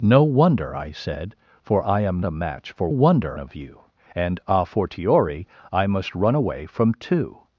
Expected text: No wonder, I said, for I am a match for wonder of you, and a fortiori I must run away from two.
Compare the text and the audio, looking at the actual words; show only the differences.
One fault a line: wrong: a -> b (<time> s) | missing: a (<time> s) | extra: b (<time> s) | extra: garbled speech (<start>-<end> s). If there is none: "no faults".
no faults